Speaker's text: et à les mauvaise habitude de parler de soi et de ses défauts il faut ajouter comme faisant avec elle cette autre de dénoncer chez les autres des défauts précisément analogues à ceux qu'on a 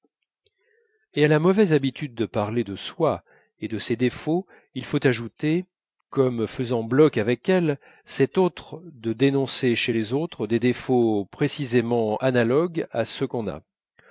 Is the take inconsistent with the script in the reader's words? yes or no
yes